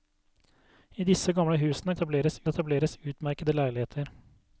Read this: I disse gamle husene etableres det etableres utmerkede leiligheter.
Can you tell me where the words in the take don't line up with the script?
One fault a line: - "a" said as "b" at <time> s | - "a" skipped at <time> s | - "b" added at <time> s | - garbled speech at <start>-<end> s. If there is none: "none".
none